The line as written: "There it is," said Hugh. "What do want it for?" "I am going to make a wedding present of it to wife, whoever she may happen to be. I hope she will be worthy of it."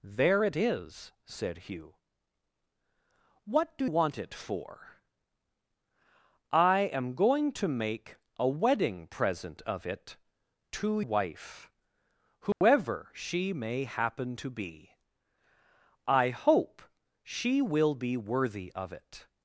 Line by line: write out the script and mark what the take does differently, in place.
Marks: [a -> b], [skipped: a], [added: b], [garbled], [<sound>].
"There it is," said Hugh. "What do want it for?" "I am going to make a wedding present of it to wife, whoever [dropout] she may happen to be. I hope she will be worthy of it."